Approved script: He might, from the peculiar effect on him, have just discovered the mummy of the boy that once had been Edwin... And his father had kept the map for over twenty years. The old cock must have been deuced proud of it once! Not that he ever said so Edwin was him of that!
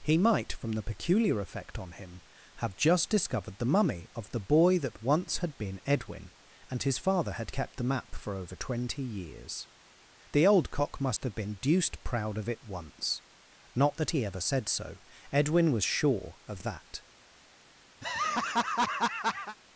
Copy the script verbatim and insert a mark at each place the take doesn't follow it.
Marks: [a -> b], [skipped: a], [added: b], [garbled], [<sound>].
He might, from the peculiar effect on him, have just discovered the mummy of the boy that once had been Edwin... And his father had kept the map for over twenty years. The old cock must [dropout] have been deuced proud of it once! Not that he ever said so Edwin was [him -> sure] of that! [laugh]